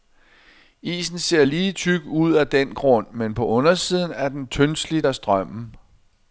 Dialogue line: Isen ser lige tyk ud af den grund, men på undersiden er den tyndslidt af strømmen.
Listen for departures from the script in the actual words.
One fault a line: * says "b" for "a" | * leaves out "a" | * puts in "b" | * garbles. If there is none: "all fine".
all fine